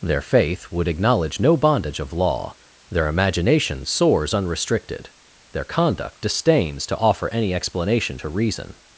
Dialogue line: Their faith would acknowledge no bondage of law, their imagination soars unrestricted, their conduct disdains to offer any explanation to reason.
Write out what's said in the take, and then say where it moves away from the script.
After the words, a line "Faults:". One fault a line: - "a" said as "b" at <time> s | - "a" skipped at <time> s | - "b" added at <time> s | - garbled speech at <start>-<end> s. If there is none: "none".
Their faith would acknowledge no bondage of law, their imagination soars unrestricted, their conduct disdains to offer any explanation to reason.
Faults:
none